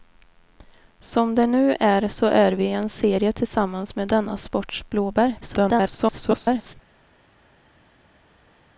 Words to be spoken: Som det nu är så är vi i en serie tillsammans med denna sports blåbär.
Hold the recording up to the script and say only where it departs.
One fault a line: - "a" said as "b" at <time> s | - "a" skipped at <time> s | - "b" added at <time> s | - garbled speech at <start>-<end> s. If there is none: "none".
- garbled speech at 5.4-6.8 s